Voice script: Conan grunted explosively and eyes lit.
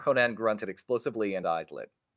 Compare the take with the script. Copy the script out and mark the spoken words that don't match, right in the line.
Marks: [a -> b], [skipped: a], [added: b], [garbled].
Conan grunted explosively and eyes lit.